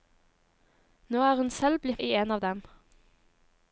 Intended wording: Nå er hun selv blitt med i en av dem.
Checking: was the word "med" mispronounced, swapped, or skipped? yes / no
yes